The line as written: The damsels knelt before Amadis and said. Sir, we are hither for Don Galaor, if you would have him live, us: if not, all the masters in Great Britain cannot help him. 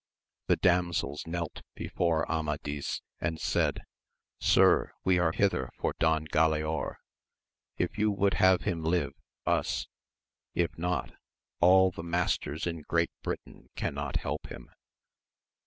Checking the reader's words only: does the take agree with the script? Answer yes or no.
yes